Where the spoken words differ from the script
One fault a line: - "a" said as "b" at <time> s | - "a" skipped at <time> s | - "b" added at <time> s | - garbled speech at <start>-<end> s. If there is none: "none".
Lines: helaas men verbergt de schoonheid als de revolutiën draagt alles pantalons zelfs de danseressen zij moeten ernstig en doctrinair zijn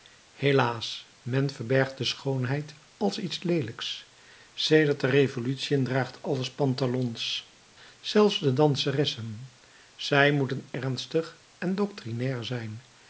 - "iets leelijks sedert" added at 3.2 s